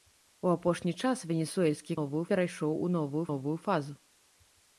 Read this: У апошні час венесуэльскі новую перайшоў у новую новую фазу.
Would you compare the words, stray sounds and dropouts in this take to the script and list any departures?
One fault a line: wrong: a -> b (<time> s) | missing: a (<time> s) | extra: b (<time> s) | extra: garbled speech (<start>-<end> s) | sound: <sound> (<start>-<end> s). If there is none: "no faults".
no faults